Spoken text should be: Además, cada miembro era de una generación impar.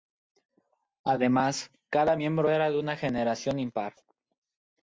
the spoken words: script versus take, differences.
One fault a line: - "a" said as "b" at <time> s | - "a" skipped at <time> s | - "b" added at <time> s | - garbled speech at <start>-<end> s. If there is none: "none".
none